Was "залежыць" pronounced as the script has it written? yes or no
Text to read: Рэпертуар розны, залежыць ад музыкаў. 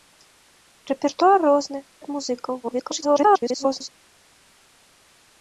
no